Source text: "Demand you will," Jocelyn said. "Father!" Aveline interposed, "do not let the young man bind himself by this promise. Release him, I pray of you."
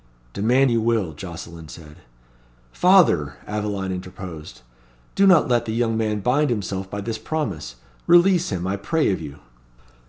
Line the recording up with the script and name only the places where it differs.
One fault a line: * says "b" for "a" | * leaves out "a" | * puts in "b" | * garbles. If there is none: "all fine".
all fine